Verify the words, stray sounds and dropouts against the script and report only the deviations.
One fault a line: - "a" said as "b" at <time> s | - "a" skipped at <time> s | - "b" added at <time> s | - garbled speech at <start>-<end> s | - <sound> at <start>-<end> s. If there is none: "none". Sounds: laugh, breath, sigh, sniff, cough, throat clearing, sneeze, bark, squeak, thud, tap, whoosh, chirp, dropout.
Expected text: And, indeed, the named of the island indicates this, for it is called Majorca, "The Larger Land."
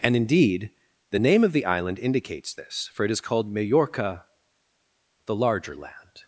- "named" said as "name" at 1.2 s